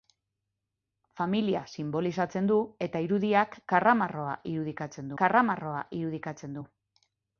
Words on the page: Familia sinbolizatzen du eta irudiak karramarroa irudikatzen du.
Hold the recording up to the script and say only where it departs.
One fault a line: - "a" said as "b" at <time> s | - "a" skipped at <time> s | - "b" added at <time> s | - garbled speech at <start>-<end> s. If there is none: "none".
- "karramarroa irudikatzen" added at 5.2 s